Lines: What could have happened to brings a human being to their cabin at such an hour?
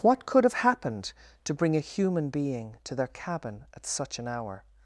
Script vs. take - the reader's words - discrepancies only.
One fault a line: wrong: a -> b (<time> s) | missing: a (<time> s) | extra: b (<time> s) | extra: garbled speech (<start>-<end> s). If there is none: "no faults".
wrong: brings -> bring (1.5 s)